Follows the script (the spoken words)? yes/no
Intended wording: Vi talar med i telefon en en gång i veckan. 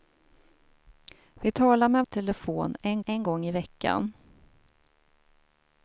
yes